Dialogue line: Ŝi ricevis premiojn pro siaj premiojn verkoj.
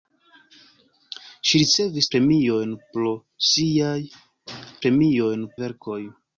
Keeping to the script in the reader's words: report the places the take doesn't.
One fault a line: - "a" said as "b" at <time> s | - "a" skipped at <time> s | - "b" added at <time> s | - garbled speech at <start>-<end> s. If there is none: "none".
none